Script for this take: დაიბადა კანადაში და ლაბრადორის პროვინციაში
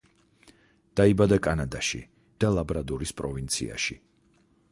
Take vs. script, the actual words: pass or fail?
pass